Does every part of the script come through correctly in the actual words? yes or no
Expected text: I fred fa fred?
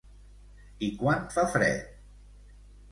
no